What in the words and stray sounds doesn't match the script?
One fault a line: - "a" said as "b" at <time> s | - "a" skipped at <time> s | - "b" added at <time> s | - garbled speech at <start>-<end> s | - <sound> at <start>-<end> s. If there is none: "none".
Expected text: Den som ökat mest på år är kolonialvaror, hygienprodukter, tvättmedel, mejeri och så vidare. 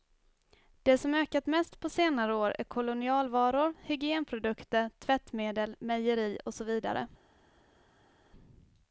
- "Den" said as "Det" at 0.8 s
- "senare" added at 1.9 s